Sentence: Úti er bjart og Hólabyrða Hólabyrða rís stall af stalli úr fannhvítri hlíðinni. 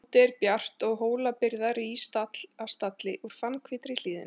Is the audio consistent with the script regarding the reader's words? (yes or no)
no